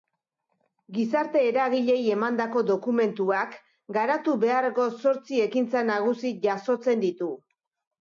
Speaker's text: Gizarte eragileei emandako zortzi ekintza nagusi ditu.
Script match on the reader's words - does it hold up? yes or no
no